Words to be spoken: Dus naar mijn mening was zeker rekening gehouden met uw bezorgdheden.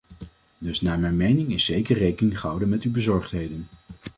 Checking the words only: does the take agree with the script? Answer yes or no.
no